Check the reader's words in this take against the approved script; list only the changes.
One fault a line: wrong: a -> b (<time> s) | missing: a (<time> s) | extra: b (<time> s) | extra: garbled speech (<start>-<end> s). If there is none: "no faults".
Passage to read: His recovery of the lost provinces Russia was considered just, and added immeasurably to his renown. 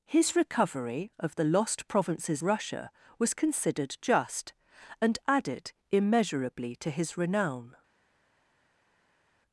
no faults